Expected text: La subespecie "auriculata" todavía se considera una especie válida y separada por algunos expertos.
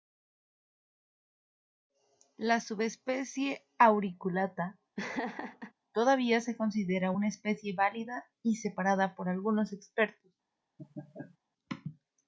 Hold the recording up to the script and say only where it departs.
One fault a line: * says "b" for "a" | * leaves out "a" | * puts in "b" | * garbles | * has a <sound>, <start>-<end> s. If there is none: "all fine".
* has a laugh, 5.0-5.7 s
* has a laugh, 10.8-11.4 s